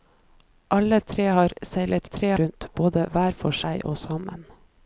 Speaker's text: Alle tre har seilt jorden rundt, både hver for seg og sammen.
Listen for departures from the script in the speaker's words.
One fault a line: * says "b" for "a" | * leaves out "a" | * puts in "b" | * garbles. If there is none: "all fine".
* says "tre" for "jorden"